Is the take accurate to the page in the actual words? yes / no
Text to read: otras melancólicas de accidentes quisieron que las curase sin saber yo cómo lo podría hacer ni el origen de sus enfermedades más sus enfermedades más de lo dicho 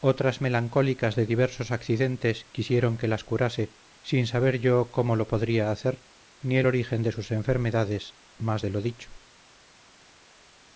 no